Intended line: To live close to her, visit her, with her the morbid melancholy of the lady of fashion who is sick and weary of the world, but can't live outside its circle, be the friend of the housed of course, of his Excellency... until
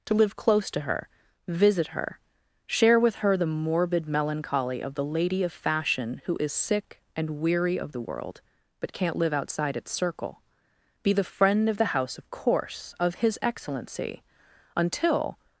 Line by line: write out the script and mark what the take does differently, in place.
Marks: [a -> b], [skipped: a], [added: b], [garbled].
To live close to her, visit her, [added: share] with her the morbid melancholy of the lady of fashion who is sick and weary of the world, but can't live outside its circle, be the friend of the [housed -> house] of course, of his Excellency... until